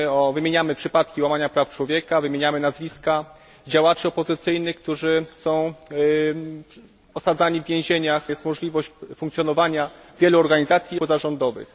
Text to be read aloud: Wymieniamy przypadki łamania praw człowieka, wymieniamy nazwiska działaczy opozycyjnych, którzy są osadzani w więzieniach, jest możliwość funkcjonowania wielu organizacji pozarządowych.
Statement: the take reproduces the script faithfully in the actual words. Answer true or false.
true